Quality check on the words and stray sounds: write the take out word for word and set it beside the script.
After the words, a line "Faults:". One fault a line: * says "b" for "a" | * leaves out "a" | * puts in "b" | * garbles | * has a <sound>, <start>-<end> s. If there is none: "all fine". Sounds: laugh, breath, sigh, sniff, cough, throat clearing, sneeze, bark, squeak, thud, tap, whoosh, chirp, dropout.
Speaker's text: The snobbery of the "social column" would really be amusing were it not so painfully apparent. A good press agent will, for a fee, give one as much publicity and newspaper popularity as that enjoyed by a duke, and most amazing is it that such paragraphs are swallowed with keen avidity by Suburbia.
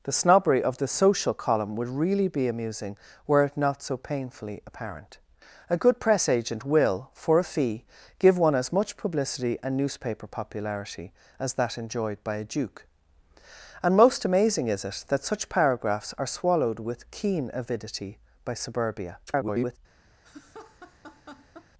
The snobbery of the "social column" would really be amusing were it not so painfully apparent. A good press agent will, for a fee, give one as much publicity and newspaper popularity as that enjoyed by a duke, and most amazing is it that such paragraphs are swallowed with keen avidity by Suburbia. [garbled]
Faults:
* garbles
* has a laugh, 20.2-21.7 s